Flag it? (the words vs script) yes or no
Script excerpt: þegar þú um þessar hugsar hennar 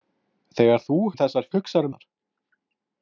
no